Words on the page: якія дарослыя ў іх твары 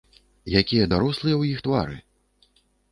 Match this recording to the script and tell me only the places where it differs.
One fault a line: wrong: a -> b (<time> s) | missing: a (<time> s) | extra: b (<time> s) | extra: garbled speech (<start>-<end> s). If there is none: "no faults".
no faults